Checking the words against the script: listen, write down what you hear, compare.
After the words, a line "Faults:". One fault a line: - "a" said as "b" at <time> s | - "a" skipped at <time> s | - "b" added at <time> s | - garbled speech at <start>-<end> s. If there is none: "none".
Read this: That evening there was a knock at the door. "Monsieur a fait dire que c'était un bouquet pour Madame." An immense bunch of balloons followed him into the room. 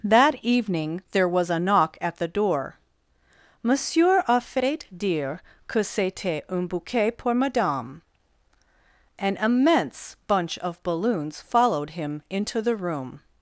That evening there was a knock at the door. "Monsieur a fait dire que c'était un bouquet pour Madame." An immense bunch of balloons followed him into the room.
Faults:
none